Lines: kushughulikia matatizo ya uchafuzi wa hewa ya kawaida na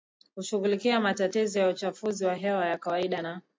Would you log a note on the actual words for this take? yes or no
no